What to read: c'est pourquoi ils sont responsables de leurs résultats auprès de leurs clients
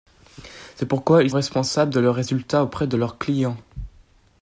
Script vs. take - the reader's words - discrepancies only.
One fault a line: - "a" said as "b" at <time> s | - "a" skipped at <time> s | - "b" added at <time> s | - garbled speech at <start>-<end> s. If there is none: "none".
- "sont" skipped at 1.3 s